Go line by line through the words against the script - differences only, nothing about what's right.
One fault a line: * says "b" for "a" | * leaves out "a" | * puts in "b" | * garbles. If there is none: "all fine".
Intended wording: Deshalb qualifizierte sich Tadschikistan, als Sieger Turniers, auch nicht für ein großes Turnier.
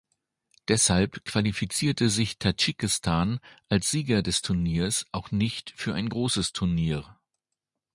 * puts in "des"